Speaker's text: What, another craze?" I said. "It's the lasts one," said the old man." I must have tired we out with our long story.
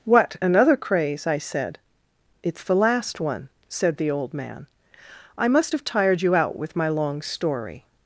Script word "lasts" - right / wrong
wrong